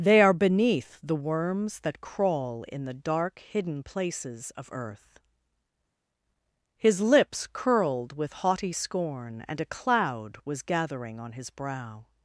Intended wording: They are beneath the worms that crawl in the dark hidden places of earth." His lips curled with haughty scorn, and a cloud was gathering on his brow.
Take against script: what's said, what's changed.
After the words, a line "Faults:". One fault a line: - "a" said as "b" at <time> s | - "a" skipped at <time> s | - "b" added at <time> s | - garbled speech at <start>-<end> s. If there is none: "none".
They are beneath the worms that crawl in the dark hidden places of earth." His lips curled with haughty scorn, and a cloud was gathering on his brow.
Faults:
none